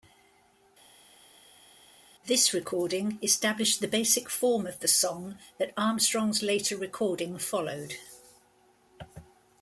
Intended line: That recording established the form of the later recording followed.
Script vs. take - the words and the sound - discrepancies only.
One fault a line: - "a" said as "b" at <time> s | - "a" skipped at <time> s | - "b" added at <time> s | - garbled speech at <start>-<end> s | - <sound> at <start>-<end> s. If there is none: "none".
- "That" said as "This" at 2.2 s
- "basic" added at 3.9 s
- "song that Armstrong's" added at 4.9 s